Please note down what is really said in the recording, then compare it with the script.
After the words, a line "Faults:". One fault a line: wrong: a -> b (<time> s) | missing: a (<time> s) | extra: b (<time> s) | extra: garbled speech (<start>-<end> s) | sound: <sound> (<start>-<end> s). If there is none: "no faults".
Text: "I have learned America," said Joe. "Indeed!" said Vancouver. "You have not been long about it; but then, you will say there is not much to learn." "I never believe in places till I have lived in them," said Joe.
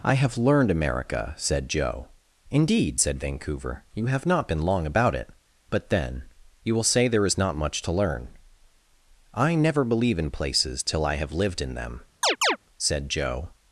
"I have learned America," said Joe. "Indeed!" said Vancouver. "You have not been long about it; but then, you will say there is not much to learn." "I never believe in places till I have lived in them," said Joe.
Faults:
sound: chirp (12.2-12.6 s)